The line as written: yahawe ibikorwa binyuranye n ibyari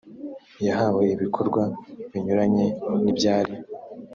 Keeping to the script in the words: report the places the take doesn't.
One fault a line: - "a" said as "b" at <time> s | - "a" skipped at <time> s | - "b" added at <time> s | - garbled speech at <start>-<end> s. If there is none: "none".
none